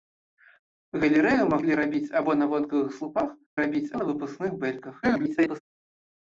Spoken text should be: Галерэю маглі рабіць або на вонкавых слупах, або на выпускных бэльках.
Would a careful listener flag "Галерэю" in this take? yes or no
no